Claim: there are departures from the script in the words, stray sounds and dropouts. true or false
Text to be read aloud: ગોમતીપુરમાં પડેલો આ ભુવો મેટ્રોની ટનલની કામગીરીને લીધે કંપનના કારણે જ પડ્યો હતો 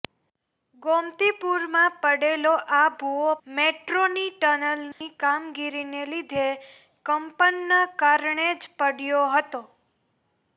true